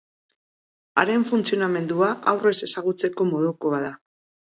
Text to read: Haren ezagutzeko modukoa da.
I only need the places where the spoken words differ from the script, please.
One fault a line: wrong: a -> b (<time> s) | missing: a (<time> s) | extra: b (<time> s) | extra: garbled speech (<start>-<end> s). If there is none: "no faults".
extra: funtzionamendua aurrez (1.3 s)